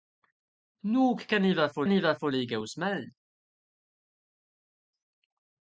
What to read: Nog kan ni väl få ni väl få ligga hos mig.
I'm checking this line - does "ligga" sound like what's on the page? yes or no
yes